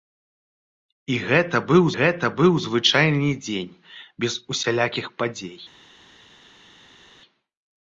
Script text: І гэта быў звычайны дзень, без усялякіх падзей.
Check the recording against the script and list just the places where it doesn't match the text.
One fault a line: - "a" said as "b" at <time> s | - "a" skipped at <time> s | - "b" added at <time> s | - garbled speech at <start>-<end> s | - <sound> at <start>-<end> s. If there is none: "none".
- "гэта быў" added at 2.0 s